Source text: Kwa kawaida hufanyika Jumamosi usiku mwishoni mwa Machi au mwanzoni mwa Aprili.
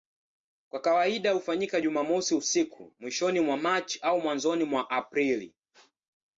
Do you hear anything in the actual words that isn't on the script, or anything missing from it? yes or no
no